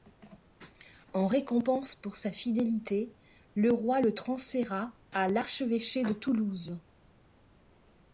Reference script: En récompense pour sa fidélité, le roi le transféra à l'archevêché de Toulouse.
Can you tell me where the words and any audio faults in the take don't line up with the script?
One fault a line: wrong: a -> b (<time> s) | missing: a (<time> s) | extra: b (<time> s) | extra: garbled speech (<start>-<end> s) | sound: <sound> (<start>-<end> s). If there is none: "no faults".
no faults